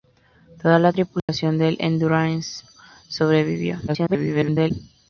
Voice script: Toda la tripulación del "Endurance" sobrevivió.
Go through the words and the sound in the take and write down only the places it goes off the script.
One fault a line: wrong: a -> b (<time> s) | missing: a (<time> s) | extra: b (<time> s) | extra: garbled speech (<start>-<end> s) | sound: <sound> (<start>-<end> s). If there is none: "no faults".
sound: dropout (1.2-1.3 s)
extra: garbled speech (3.9-4.7 s)